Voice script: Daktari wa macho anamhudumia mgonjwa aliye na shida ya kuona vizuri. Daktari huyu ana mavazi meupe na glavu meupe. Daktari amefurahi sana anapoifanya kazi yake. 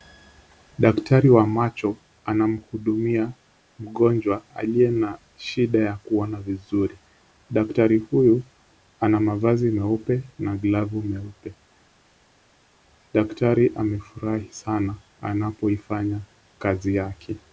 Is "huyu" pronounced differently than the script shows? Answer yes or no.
no